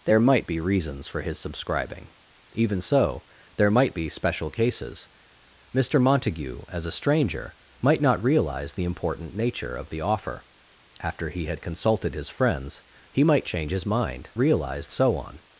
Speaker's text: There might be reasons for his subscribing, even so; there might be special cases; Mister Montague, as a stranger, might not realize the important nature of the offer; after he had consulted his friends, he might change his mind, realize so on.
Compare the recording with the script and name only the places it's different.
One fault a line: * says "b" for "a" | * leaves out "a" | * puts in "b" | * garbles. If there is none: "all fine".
all fine